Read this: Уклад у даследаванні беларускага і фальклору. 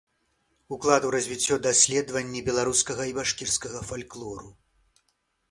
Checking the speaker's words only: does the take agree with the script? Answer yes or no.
no